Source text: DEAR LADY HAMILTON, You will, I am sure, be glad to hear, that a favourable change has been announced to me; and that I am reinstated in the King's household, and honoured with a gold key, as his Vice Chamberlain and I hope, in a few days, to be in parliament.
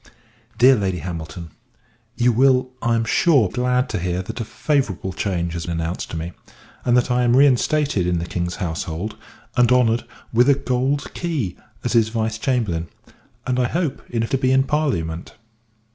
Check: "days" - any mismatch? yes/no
yes